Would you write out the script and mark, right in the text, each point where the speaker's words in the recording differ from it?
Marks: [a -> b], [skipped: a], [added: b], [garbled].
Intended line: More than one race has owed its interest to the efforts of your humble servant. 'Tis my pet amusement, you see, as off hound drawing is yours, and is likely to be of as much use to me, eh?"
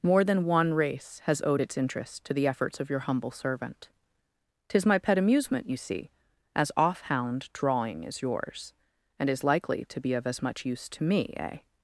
More than one race has owed its interest to the efforts of your humble servant. 'Tis my pet amusement, you see, as off hound drawing is yours, and is likely to be of as much use to me, eh?"